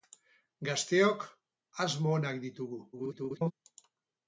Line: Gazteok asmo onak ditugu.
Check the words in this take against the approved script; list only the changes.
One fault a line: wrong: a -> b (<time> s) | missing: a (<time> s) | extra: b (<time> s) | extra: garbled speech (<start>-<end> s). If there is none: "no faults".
extra: garbled speech (2.9-3.5 s)